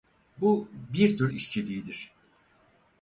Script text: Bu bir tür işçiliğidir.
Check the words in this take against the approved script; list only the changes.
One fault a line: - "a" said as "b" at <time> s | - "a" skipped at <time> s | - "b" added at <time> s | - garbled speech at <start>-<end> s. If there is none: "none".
none